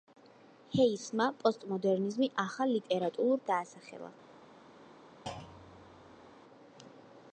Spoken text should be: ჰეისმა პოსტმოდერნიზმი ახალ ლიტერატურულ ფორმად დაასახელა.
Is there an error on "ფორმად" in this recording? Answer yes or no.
yes